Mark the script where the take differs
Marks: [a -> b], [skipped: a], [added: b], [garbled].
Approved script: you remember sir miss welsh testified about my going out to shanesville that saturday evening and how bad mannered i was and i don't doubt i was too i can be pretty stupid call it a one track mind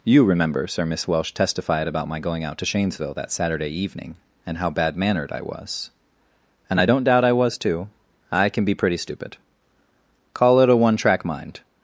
you remember sir miss welsh testified about my going out to shanesville that saturday evening and how bad mannered i was and i don't doubt i was too i can be pretty stupid call it a one track mind